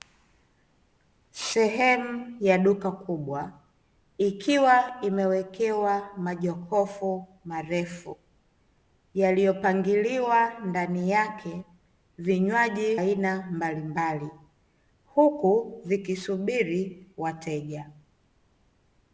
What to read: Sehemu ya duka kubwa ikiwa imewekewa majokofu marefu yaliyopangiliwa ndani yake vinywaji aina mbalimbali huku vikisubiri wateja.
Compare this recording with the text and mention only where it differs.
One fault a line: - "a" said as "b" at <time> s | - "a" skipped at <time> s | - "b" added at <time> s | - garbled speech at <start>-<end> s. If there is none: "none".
none